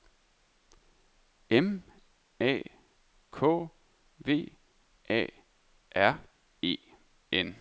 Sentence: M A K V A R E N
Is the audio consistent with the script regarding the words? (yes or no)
yes